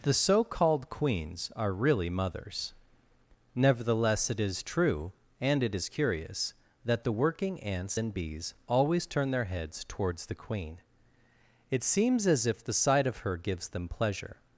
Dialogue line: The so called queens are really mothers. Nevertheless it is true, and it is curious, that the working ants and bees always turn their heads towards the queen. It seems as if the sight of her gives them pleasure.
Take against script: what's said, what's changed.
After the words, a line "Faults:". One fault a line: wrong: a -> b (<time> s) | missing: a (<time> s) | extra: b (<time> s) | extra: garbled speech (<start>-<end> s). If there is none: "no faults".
The so called queens are really mothers. Nevertheless it is true, and it is curious, that the working ants and bees always turn their heads towards the queen. It seems as if the sight of her gives them pleasure.
Faults:
no faults